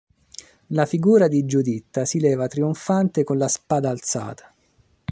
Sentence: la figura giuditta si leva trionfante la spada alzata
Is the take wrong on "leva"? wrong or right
right